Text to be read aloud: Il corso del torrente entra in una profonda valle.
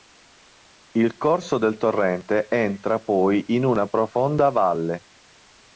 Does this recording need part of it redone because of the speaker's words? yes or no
yes